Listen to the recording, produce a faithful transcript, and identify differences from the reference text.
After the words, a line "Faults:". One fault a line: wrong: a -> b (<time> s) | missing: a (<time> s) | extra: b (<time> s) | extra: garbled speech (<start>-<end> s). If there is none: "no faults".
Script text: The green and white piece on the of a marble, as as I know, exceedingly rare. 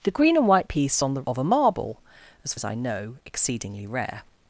The green and white piece on the of a marble, as as I know, exceedingly rare.
Faults:
no faults